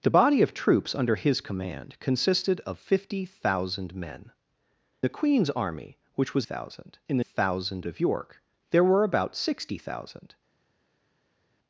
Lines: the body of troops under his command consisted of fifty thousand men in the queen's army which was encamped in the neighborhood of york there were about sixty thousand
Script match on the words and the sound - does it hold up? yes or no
no